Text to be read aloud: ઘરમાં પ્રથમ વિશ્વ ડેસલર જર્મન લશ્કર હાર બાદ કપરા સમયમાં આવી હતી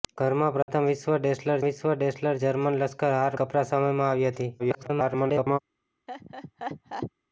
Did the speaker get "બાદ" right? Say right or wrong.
wrong